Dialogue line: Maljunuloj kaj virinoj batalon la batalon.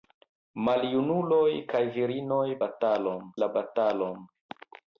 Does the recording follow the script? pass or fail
pass